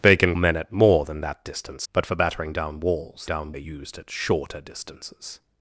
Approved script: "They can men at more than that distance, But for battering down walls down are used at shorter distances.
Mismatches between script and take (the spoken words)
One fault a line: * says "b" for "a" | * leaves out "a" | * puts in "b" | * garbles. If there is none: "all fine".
all fine